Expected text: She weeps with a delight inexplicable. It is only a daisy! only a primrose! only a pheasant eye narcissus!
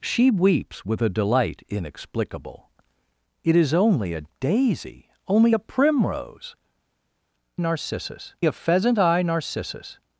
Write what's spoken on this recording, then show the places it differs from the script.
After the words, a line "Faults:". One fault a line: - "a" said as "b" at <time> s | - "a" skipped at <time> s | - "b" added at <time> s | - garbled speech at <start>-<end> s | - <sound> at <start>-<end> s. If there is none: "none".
She weeps with a delight inexplicable. It is only a daisy! only a primrose! narcissus a pheasant eye narcissus!
Faults:
- "only" said as "narcissus" at 7.6 s